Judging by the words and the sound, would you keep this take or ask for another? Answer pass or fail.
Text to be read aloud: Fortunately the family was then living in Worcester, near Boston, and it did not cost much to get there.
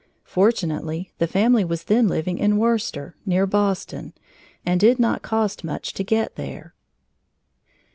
fail